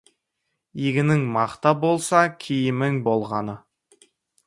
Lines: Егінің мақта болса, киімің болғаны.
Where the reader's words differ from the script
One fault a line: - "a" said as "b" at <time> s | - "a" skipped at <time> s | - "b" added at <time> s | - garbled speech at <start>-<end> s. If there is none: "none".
none